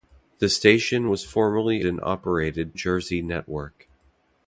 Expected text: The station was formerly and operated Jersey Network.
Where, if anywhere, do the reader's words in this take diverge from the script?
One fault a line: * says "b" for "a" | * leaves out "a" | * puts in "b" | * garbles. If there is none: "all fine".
all fine